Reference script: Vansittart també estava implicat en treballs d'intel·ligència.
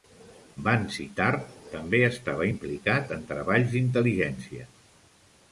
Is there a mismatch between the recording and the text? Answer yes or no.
no